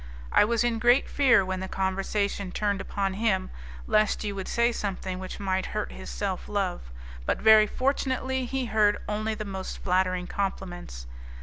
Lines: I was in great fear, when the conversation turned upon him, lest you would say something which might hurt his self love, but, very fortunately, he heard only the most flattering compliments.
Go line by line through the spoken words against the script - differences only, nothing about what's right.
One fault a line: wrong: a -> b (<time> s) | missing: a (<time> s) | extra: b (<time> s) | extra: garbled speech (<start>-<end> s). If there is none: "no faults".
no faults